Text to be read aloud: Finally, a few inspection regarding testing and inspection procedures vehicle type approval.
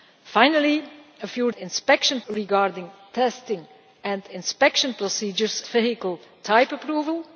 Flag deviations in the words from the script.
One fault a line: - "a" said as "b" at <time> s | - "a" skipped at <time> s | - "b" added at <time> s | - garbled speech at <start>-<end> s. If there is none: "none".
none